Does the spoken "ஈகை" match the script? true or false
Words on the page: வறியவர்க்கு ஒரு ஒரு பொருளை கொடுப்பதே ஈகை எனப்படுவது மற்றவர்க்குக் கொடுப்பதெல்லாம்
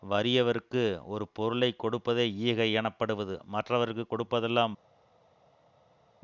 true